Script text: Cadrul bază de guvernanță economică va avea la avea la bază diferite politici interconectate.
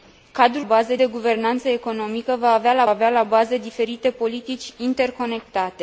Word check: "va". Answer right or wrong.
right